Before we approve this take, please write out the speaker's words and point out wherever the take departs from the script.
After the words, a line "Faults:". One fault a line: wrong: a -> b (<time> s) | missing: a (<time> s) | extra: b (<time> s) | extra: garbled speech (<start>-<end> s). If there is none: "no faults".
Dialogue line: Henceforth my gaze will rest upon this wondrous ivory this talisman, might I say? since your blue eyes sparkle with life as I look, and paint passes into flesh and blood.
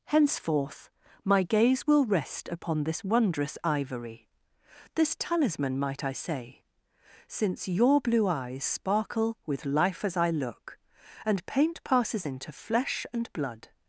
Henceforth my gaze will rest upon this wondrous ivory this talisman, might I say? since your blue eyes sparkle with life as I look, and paint passes into flesh and blood.
Faults:
no faults